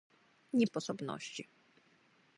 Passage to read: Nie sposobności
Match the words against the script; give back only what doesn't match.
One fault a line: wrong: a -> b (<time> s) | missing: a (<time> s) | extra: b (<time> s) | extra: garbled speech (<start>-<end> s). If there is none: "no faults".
no faults